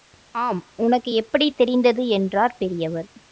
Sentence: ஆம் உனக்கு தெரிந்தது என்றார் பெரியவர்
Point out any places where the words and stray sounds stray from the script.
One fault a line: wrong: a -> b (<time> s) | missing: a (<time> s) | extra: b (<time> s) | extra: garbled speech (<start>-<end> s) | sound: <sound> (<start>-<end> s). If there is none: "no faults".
extra: எப்படி (1.1 s)